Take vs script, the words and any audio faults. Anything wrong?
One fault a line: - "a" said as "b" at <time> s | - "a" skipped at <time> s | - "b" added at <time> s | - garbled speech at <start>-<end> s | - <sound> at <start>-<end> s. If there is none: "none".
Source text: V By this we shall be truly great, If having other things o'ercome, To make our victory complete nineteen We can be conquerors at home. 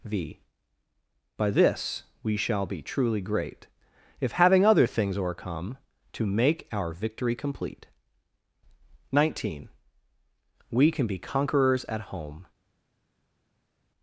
none